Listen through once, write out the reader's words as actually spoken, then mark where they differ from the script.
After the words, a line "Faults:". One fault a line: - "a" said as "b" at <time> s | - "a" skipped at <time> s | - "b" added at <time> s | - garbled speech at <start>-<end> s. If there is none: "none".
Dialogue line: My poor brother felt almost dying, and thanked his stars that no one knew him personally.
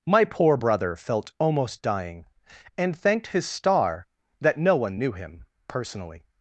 My poor brother felt almost dying, and thanked his star that no one knew him personally.
Faults:
- "stars" said as "star" at 3.5 s